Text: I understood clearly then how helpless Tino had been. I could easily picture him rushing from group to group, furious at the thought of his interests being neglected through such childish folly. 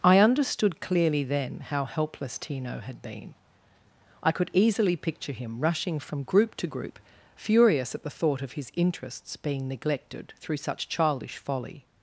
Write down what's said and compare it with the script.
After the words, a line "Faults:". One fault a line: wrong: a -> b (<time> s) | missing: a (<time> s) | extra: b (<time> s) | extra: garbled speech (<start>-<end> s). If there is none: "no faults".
I understood clearly then how helpless Tino had been. I could easily picture him rushing from group to group, furious at the thought of his interests being neglected through such childish folly.
Faults:
no faults